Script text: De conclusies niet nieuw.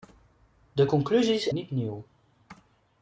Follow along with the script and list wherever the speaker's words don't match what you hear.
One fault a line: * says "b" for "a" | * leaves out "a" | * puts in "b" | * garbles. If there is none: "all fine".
all fine